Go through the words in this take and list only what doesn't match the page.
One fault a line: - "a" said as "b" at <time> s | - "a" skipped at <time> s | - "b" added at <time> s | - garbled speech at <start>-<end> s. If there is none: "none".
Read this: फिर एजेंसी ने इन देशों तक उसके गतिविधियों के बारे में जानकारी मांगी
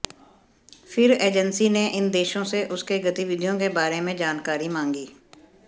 - "तक" said as "से" at 2.4 s